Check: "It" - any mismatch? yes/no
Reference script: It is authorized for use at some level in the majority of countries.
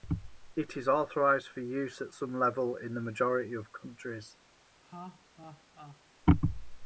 no